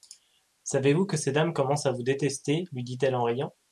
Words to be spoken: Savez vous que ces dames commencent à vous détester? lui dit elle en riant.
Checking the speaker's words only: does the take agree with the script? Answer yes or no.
yes